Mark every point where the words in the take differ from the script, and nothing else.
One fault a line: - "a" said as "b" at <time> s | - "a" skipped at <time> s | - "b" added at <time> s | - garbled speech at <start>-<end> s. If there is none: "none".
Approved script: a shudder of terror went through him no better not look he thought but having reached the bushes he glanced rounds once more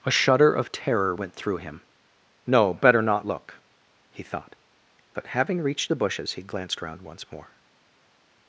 - "rounds" said as "round" at 6.8 s